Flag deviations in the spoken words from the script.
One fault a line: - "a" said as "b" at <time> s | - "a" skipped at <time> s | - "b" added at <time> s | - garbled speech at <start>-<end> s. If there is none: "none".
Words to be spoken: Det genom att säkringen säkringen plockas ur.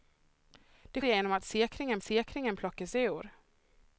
none